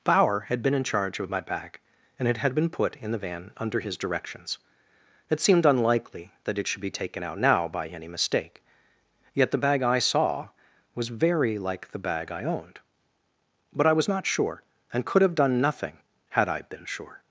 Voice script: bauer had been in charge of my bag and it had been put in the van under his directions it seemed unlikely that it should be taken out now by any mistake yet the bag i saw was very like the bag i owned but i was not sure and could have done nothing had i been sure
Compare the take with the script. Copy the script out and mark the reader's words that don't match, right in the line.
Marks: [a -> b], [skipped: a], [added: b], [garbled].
bauer had been in charge of my bag and it had been put in the van under his directions it seemed unlikely that it should be taken out now by any mistake yet the bag i saw was very like the bag i owned but i was not sure and could have done nothing had i been sure